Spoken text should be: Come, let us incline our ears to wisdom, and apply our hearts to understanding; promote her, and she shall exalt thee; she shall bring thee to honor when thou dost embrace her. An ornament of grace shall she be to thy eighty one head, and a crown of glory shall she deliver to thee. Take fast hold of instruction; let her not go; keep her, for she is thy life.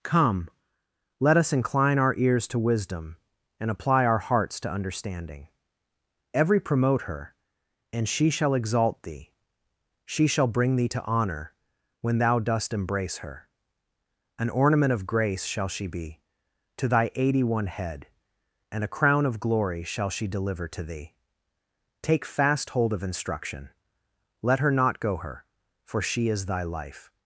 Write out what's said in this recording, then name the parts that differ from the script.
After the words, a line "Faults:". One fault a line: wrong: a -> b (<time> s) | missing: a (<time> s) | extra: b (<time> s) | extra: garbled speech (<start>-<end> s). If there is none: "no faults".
Come, let us incline our ears to wisdom, and apply our hearts to understanding; every promote her, and she shall exalt thee; she shall bring thee to honor when thou dost embrace her. An ornament of grace shall she be to thy eighty one head, and a crown of glory shall she deliver to thee. Take fast hold of instruction; let her not go; her, for she is thy life.
Faults:
extra: every (6.3 s)
missing: keep (25.2 s)